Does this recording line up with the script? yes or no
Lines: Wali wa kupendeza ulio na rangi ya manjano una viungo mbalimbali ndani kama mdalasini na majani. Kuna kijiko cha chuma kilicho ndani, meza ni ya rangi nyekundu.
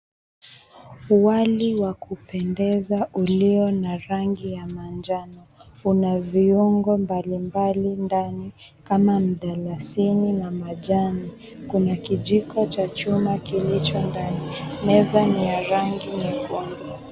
yes